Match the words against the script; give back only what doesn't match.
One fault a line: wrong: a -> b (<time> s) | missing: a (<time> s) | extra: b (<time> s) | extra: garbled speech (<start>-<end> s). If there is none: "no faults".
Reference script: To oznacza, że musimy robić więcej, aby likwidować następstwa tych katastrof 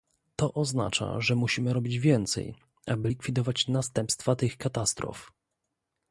no faults